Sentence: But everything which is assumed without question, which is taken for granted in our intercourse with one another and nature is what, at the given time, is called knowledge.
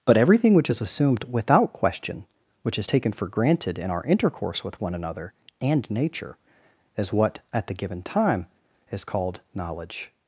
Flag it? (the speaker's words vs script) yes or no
no